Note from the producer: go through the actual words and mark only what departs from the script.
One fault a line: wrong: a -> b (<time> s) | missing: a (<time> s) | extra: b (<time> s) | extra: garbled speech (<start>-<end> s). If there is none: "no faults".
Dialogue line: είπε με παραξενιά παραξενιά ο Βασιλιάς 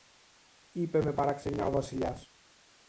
missing: παραξενιά (1.6 s)